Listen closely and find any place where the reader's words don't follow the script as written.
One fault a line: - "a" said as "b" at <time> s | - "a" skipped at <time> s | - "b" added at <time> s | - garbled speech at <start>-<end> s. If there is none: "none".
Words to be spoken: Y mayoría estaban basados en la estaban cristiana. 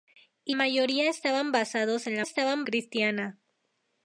none